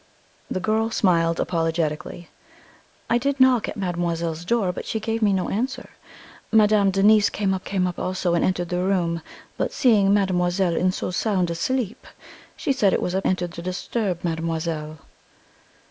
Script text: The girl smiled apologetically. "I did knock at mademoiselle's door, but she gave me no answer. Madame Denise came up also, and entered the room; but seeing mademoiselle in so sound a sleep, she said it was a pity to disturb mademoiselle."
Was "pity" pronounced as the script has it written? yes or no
no